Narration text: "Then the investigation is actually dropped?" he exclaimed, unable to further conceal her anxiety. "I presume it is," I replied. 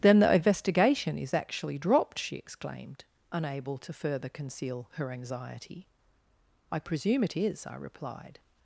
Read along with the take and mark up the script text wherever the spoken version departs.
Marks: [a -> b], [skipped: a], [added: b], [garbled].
"Then the investigation is actually dropped?" [he -> she] exclaimed, unable to further conceal her anxiety. "I presume it is," I replied.